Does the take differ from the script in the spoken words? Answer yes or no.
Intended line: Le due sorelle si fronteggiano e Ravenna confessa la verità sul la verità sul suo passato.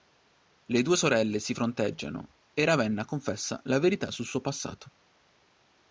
yes